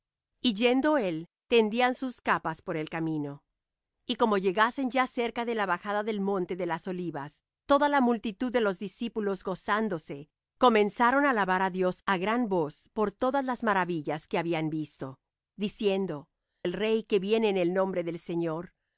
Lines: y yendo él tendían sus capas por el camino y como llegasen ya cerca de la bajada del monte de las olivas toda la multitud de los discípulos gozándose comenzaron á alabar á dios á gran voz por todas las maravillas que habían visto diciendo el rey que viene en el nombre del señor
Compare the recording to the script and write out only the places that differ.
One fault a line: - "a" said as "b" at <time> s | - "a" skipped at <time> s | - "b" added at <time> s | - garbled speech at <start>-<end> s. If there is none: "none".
none